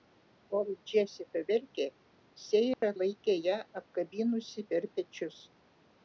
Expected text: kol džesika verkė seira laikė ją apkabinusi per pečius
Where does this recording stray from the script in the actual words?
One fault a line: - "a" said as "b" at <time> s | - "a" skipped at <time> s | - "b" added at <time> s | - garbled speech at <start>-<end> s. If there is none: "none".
none